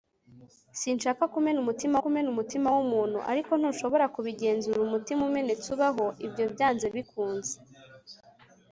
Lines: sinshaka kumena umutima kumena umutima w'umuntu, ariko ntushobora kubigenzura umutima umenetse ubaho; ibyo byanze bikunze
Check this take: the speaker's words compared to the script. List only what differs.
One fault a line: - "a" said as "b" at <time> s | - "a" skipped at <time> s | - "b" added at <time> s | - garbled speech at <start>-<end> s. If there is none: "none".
none